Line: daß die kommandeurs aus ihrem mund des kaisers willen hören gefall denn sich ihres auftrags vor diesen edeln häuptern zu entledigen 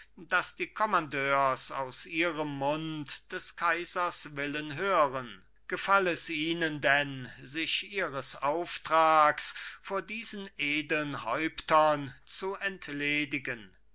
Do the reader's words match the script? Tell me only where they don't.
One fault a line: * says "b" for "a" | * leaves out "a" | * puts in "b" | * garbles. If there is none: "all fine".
* puts in "es ihnen"